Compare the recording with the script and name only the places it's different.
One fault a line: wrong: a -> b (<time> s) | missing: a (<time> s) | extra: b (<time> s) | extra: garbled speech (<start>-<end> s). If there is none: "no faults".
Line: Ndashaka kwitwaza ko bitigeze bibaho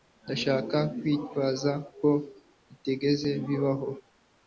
no faults